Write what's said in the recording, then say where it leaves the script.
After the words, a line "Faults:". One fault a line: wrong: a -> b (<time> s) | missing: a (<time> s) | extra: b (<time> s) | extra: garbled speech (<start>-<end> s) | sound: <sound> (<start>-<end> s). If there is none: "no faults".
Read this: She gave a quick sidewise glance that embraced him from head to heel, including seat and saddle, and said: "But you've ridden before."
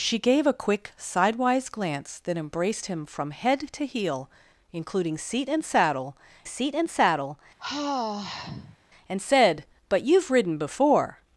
She gave a quick sidewise glance that embraced him from head to heel, including seat and saddle seat and saddle, and said: "But you've ridden before."
Faults:
extra: seat and saddle (6.4 s)
sound: sigh (7.6-8.8 s)